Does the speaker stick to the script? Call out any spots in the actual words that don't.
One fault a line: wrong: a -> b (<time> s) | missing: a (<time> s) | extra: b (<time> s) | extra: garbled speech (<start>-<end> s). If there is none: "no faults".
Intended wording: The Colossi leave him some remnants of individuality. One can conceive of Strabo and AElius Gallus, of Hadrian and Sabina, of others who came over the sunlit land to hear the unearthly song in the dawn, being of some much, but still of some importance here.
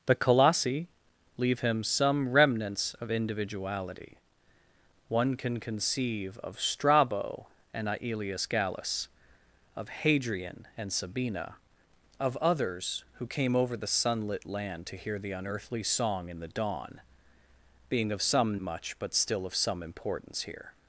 no faults